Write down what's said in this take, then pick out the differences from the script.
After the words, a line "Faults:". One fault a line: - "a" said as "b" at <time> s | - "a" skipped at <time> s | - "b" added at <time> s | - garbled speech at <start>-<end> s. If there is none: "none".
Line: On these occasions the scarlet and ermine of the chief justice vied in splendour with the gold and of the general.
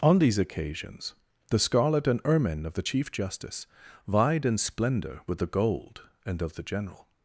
On these occasions the scarlet and ermine of the chief justice vied in splendour with the gold and of the general.
Faults:
none